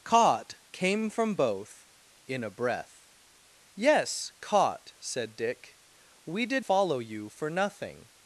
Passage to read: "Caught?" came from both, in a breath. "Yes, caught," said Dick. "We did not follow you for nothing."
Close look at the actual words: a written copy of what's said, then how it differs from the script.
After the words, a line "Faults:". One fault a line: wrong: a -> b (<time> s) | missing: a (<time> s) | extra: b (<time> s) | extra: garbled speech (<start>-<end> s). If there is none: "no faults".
"Caught?" came from both, in a breath. "Yes, caught," said Dick. "We did follow you for nothing."
Faults:
missing: not (6.6 s)